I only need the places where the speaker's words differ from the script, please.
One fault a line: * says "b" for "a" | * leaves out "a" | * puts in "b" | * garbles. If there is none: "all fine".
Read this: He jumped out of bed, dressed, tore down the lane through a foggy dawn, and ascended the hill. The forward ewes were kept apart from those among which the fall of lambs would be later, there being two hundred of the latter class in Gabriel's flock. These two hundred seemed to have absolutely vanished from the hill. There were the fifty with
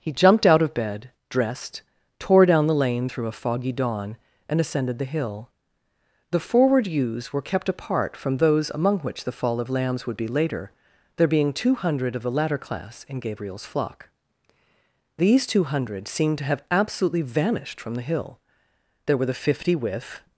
all fine